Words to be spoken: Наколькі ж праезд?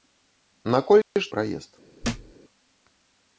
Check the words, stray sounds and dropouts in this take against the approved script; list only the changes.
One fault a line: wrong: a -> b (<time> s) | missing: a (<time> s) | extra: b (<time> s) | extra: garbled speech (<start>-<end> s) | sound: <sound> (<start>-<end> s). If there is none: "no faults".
sound: dropout (1.0-1.2 s)
sound: thud (2.0-2.3 s)